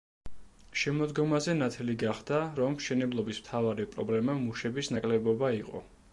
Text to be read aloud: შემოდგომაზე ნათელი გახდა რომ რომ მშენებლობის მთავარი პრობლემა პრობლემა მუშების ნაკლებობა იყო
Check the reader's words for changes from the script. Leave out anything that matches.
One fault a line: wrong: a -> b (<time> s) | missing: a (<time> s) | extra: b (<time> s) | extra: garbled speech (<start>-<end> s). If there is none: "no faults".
missing: რომ (2.8 s)
missing: პრობლემა (4.4 s)